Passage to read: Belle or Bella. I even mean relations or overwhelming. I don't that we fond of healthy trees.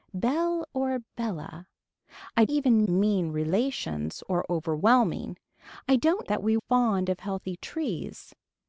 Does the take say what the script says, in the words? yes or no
yes